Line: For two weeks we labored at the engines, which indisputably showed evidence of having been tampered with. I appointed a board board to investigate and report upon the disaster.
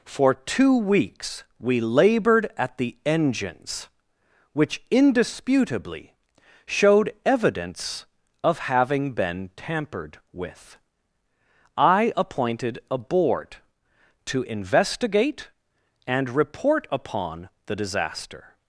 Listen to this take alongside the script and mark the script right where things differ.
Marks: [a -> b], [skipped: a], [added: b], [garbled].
For two weeks we labored at the engines, which indisputably showed evidence of having been tampered with. I appointed a board [skipped: board] to investigate and report upon the disaster.